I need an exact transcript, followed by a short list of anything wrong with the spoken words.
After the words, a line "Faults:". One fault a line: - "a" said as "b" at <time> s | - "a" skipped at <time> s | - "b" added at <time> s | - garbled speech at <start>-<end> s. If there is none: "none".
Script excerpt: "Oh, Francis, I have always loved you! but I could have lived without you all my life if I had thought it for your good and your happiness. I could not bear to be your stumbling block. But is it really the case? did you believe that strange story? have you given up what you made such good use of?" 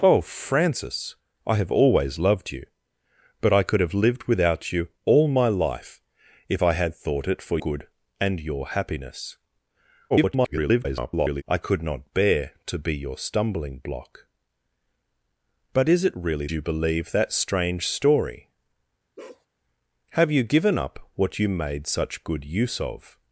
"Oh, Francis, I have always loved you! but I could have lived without you all my life if I had thought it for good and your happiness. [garbled] I could not bear to be your stumbling block. But is it really you believe that strange story? have you given up what you made such good use of?"
Faults:
- "your" skipped at 7.6 s
- garbled speech at 10.1-11.4 s
- "the case did" skipped at 16.5 s